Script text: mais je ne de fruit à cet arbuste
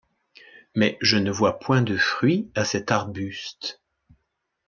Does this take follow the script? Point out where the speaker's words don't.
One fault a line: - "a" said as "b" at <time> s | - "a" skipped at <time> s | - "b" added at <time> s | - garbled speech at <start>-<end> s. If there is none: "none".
- "vois point" added at 1.3 s